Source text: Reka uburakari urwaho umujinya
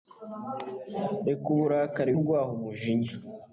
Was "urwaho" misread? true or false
false